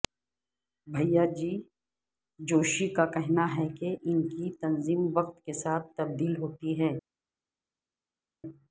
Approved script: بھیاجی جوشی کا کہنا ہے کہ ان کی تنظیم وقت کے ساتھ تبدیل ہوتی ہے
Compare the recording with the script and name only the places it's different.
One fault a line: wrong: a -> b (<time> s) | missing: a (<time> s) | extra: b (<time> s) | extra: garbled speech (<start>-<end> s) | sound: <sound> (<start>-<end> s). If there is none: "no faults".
no faults